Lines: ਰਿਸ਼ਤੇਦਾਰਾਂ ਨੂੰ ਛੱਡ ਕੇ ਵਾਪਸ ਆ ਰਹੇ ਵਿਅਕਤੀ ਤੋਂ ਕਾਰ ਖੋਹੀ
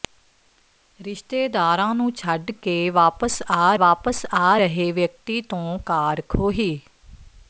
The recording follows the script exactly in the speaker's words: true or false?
false